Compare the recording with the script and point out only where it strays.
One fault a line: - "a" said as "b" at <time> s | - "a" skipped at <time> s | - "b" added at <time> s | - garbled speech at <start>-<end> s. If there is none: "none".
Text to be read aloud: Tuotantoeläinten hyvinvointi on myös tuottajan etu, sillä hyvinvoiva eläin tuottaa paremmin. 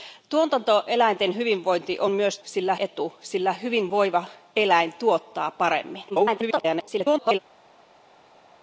- "tuottajan" said as "sillä" at 2.4 s
- garbled speech at 6.1-7.4 s